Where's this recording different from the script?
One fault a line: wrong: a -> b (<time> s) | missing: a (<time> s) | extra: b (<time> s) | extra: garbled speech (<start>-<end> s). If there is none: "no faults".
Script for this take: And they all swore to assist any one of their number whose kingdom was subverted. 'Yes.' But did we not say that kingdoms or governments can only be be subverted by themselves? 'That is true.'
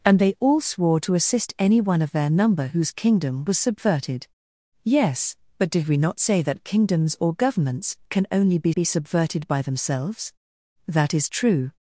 no faults